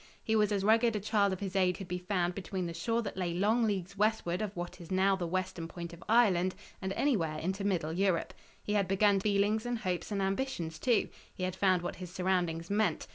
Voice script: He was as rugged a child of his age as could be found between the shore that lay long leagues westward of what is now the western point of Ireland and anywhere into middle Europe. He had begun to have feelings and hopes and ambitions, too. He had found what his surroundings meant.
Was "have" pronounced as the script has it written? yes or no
no